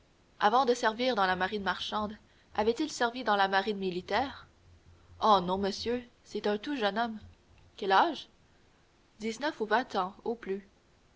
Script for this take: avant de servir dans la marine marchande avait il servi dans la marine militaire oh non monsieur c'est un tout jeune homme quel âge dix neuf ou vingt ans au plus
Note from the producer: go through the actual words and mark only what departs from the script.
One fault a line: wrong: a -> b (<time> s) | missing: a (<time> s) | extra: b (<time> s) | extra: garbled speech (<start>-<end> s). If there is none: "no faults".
no faults